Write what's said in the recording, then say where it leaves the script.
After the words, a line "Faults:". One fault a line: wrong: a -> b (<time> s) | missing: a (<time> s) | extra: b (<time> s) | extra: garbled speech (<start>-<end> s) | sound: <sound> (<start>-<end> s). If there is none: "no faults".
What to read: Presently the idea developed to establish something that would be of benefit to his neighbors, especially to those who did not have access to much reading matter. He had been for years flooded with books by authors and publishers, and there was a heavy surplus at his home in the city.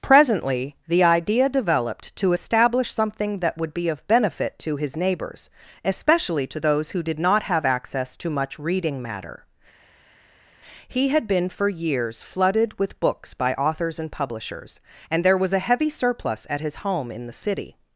Presently the idea developed to establish something that would be of benefit to his neighbors, especially to those who did not have access to much reading matter. He had been for years flooded with books by authors and publishers, and there was a heavy surplus at his home in the city.
Faults:
no faults